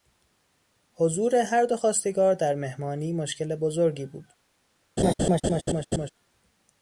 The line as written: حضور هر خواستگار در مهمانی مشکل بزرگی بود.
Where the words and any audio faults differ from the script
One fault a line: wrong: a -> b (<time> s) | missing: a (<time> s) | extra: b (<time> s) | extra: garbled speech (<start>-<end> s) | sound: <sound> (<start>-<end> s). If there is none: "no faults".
extra: دو (1.6 s)
sound: laugh (5.0-6.1 s)